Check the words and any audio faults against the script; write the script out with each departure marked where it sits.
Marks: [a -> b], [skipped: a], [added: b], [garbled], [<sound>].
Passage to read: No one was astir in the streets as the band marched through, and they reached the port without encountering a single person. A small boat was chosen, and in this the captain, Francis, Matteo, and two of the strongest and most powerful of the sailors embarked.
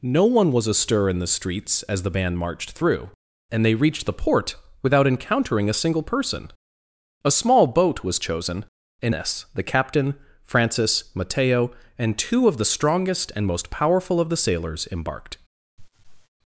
No one was astir in the streets as the band marched through, and they reached the port without encountering a single person. A small boat was chosen, and [skipped: in] this the captain, Francis, Matteo, and two of the strongest and most powerful of the sailors embarked. [laugh]